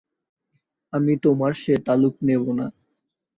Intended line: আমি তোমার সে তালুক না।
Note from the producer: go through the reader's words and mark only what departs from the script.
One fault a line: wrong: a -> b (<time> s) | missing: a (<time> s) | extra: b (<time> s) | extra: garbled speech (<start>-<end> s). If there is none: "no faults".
extra: নেব (2.2 s)